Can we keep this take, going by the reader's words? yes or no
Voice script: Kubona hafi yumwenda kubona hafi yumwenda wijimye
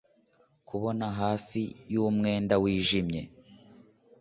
no